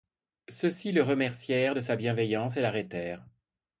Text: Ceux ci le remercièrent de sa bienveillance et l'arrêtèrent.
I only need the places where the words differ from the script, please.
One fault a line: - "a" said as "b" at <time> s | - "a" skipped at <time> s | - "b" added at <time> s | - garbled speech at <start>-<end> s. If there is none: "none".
none